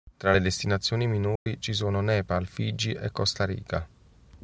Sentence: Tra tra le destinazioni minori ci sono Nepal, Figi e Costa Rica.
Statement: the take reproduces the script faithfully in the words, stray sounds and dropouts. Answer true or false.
false